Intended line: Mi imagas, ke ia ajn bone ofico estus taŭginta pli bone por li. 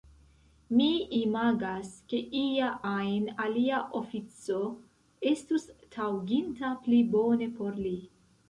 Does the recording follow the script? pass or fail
fail